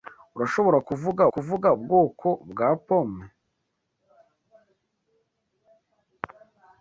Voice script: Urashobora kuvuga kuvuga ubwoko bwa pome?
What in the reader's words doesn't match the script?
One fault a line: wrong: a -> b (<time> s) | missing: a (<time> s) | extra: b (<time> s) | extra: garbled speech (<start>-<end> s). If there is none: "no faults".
no faults